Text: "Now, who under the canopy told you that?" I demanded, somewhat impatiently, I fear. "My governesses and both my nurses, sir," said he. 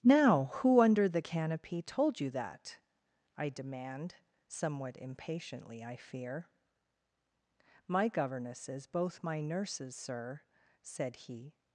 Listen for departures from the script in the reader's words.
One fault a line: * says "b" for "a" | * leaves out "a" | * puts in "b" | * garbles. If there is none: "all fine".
* says "demand" for "demanded"
* leaves out "and"